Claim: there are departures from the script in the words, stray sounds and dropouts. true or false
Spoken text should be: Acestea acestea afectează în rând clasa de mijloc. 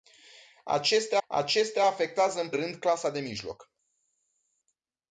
false